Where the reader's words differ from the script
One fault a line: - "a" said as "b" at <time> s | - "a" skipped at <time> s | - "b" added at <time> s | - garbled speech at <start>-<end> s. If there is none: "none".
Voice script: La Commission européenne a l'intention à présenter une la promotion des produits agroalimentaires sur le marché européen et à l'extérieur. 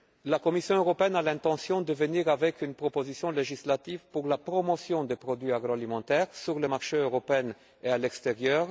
- "à" said as "de" at 1.8 s
- "proposition législative pour" added at 2.8 s